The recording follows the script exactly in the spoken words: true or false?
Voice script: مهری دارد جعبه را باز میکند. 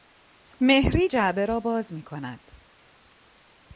false